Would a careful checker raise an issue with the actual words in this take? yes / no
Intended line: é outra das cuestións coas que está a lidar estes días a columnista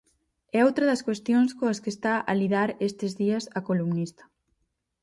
no